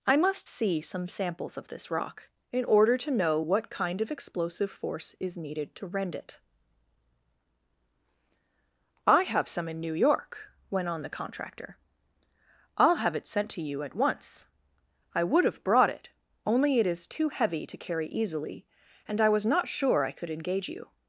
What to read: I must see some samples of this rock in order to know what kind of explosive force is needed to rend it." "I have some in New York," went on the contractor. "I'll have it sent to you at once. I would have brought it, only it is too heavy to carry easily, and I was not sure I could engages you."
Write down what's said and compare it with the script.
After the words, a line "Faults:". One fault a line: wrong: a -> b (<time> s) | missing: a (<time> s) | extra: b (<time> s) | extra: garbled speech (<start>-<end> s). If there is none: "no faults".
I must see some samples of this rock in order to know what kind of explosive force is needed to rend it." "I have some in New York," went on the contractor. "I'll have it sent to you at once. I would have brought it, only it is too heavy to carry easily, and I was not sure I could engage you."
Faults:
wrong: engages -> engage (20.3 s)